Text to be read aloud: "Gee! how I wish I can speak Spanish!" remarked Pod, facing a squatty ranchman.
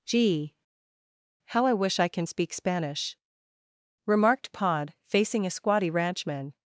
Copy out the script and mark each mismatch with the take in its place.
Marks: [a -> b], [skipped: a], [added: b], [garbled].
"Gee! how I wish I can speak Spanish!" remarked Pod, facing a squatty ranchman.